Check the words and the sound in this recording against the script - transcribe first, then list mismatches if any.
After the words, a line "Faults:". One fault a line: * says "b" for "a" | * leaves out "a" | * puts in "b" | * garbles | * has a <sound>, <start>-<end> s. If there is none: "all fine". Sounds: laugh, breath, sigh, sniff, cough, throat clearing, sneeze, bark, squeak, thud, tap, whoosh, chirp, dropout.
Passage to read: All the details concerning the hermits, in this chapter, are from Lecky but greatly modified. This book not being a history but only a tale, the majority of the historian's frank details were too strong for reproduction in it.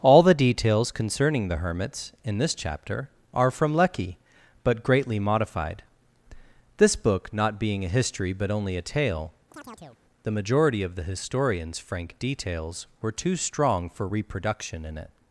All the details concerning the hermits, in this chapter, are from Lecky but greatly modified. This book not being a history but only a tale, the majority of the historian's frank details were too strong for reproduction in it.
Faults:
* has a chirp, 9.5-10.0 s